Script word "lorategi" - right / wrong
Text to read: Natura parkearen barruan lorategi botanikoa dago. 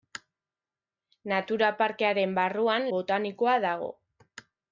wrong